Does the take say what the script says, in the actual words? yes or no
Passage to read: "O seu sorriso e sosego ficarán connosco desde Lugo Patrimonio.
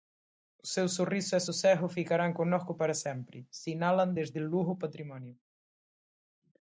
no